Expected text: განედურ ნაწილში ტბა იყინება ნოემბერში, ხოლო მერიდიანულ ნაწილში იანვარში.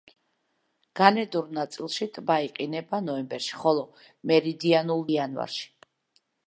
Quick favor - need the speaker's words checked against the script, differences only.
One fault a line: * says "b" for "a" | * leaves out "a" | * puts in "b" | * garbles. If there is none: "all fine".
* leaves out "ნაწილში"